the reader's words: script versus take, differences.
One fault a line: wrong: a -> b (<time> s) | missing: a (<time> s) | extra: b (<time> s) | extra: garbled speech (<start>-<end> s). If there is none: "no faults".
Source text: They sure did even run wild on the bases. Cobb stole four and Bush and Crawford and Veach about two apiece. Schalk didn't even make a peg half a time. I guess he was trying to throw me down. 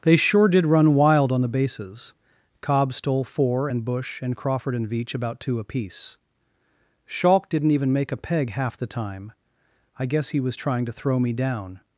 missing: even (0.7 s)
wrong: a -> the (8.8 s)